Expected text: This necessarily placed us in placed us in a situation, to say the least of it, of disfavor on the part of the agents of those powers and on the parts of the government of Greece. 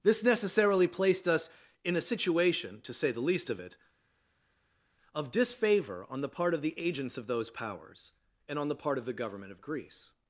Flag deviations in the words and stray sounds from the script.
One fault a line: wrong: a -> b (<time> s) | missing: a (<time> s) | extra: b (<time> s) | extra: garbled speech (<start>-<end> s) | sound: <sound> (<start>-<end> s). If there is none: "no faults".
missing: placed us in (1.9 s)
wrong: parts -> part (8.8 s)